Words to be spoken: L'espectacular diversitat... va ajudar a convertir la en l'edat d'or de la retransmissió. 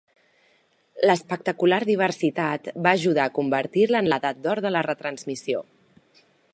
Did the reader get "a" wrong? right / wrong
right